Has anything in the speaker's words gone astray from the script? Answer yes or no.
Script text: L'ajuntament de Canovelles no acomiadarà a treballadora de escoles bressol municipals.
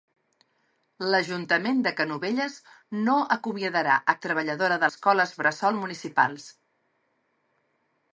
no